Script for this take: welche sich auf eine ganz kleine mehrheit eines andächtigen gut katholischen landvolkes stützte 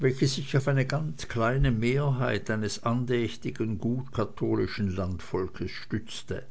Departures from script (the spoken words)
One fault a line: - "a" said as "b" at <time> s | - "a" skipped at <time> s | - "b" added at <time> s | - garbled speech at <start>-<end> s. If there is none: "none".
none